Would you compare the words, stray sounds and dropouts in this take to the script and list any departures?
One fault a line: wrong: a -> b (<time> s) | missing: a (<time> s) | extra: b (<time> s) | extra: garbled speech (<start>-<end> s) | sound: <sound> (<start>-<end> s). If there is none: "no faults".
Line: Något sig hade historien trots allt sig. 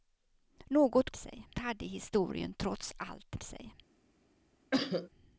sound: cough (4.7-5.1 s)